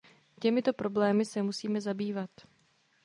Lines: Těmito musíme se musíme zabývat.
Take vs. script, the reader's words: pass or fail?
fail